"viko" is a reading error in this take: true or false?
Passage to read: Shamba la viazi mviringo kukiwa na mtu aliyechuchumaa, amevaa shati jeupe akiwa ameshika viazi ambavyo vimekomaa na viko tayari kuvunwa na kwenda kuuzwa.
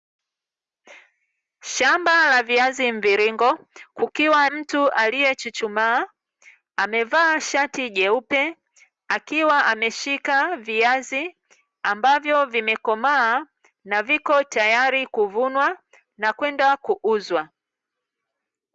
false